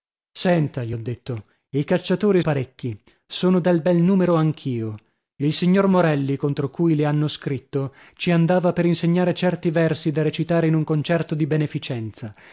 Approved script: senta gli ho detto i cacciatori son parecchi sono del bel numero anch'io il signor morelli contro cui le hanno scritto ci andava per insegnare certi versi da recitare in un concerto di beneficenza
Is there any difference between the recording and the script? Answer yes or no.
yes